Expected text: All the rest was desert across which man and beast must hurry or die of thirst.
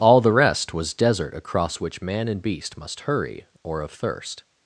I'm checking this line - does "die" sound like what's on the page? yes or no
no